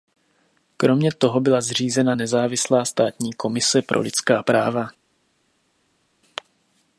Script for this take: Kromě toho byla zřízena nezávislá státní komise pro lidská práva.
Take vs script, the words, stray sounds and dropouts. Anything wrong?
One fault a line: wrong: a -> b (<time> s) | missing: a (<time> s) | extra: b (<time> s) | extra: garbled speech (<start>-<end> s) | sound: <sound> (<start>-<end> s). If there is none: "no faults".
no faults